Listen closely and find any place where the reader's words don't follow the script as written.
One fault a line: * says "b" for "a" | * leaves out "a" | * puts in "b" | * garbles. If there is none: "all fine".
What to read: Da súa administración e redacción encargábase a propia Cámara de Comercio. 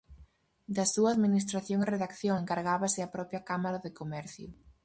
all fine